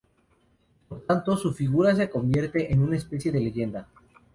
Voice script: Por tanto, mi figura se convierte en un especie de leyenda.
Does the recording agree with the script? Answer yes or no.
no